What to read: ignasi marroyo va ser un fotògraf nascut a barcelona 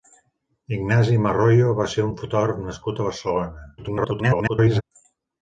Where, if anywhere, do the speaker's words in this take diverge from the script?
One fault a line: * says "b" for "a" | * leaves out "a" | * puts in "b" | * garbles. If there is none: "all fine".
* garbles